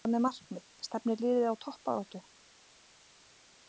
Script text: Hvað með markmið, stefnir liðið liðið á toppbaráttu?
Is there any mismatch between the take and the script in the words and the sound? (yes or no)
yes